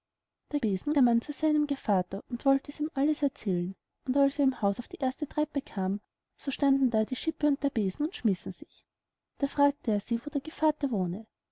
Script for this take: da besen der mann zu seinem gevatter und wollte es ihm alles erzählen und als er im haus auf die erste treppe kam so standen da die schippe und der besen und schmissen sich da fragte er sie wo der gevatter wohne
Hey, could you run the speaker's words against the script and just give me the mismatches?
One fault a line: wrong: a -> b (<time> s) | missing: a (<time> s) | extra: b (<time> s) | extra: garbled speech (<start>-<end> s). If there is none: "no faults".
no faults